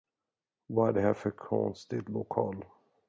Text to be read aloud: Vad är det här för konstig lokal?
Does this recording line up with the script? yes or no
yes